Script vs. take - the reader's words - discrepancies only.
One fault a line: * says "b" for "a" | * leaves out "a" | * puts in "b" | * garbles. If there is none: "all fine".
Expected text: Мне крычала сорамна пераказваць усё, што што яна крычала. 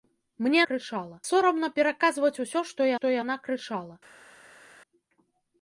all fine